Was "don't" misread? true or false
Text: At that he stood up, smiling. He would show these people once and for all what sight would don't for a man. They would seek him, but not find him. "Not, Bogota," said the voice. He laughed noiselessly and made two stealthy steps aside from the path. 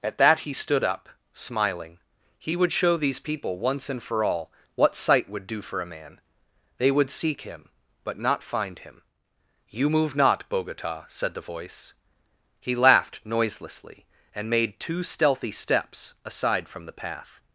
true